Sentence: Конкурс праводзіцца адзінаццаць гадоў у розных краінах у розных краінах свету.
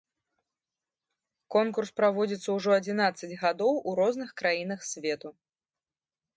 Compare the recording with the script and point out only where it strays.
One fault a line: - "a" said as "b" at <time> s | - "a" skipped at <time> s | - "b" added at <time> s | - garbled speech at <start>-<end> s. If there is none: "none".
- "ўжо" added at 2.6 s
- "у розных краінах" skipped at 4.8 s